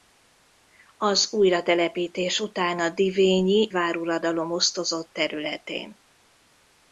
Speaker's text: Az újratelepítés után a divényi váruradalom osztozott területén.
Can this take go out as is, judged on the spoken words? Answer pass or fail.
pass